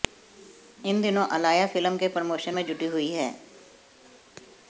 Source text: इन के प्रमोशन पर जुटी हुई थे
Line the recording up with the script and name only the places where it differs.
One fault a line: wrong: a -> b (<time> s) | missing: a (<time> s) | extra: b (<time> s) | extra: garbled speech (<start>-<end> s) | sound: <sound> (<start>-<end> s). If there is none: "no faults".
extra: दिनों अलाया फिल्म (1.0 s)
wrong: पर -> में (2.5 s)
wrong: थे -> हैं (3.1 s)